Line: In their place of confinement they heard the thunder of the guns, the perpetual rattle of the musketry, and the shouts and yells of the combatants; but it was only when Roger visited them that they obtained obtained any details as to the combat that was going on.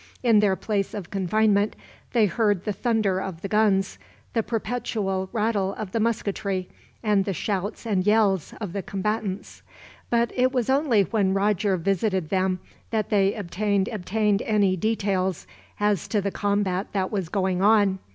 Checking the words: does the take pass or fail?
pass